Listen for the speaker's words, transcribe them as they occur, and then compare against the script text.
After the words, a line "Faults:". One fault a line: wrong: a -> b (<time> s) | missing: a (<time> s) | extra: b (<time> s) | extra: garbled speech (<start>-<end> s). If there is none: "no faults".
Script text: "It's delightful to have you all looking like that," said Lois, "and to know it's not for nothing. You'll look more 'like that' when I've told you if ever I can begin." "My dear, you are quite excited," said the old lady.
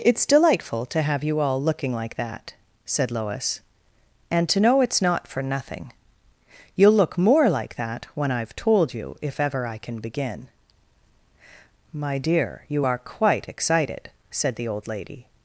"It's delightful to have you all looking like that," said Lois, "and to know it's not for nothing. You'll look more 'like that' when I've told you if ever I can begin." "My dear, you are quite excited," said the old lady.
Faults:
no faults